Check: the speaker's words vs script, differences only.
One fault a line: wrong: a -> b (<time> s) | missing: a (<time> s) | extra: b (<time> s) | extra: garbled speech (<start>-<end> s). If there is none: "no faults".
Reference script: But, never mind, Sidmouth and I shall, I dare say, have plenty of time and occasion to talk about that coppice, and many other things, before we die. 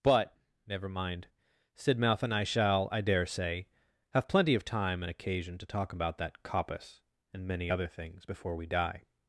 no faults